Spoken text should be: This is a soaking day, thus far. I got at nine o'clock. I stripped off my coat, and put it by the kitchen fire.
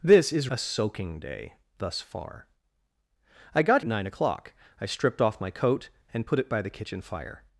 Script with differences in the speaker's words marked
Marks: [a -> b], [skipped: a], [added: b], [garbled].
This is a soaking day, thus far. I got at nine o'clock. I stripped off my coat, and put it by the kitchen fire.